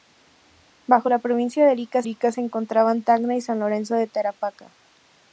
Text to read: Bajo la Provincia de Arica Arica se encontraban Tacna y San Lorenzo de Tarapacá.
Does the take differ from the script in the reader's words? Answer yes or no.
no